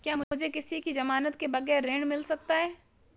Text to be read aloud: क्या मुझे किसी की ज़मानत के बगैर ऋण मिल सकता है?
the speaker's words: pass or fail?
pass